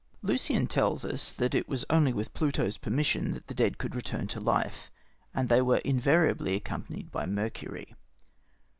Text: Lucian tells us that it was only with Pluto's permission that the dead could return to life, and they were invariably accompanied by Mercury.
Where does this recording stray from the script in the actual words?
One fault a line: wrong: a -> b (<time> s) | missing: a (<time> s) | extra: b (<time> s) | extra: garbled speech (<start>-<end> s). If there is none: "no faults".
no faults